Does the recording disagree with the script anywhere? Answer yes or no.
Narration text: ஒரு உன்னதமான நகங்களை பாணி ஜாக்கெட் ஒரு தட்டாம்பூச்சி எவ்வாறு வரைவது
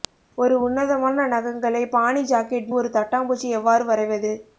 no